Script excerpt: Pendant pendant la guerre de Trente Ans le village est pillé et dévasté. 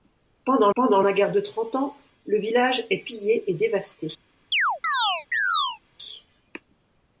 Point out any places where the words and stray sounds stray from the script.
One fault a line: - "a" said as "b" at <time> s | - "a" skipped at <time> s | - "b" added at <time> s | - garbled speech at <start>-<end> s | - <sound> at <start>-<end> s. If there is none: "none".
- chirp at 4.5-5.8 s